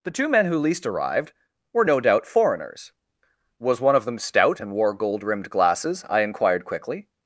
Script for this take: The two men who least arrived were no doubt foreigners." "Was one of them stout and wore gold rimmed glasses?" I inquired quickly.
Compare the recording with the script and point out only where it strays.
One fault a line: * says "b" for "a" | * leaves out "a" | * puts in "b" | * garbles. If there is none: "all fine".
all fine